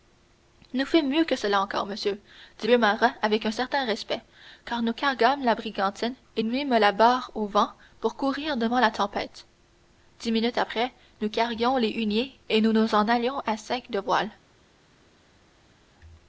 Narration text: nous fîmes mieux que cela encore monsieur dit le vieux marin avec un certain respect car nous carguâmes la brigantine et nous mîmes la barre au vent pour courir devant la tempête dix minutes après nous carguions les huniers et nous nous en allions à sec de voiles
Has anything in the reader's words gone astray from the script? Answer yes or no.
yes